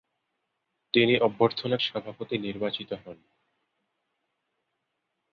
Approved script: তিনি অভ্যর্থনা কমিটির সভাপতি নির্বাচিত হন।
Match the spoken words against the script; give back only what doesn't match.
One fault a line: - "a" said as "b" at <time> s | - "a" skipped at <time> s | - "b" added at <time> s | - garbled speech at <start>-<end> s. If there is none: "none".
- "কমিটির" skipped at 1.8 s